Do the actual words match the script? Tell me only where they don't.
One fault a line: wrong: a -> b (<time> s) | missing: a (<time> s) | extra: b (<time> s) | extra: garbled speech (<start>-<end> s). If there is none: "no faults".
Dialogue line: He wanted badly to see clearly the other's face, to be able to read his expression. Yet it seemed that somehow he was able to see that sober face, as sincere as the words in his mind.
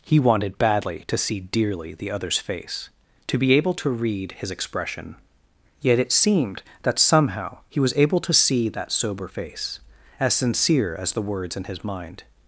wrong: clearly -> dearly (1.4 s)